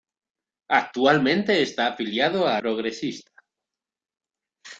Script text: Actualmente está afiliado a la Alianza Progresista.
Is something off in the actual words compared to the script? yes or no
yes